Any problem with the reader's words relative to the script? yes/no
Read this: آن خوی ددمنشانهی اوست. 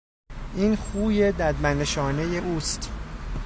yes